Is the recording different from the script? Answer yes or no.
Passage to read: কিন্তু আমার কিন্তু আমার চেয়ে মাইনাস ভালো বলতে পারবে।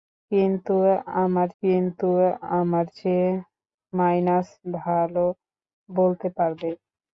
no